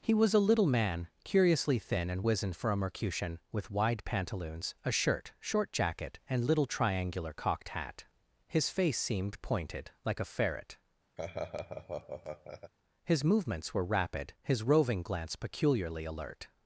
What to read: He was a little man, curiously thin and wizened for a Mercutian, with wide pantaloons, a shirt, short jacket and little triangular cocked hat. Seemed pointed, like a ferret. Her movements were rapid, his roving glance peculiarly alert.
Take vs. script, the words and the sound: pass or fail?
fail